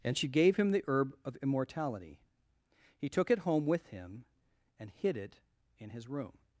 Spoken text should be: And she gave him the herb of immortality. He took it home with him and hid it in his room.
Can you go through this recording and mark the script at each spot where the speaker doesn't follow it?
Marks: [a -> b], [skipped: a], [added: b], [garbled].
And she gave him the herb of immortality. He took it home with him and hid it in his room.